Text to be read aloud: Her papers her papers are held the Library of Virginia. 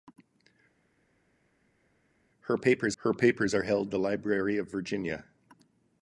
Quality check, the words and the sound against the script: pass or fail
pass